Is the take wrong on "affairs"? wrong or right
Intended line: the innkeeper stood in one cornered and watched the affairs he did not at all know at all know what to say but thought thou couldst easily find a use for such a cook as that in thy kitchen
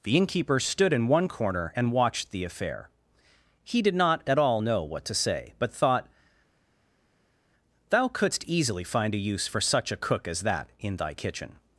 wrong